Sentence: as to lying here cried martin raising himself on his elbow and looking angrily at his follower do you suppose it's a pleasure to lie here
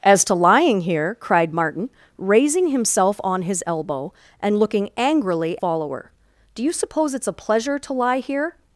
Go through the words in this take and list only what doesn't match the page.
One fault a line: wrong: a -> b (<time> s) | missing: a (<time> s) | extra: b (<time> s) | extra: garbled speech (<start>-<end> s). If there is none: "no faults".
missing: at his (5.6 s)